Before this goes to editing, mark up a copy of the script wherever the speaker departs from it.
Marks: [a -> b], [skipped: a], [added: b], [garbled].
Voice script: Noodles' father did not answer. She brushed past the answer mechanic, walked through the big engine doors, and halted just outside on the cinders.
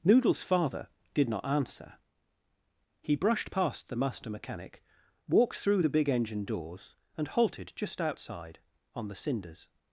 Noodles' father did not answer. [She -> He] brushed past the [answer -> master] mechanic, walked through the big engine doors, and halted just outside on the cinders.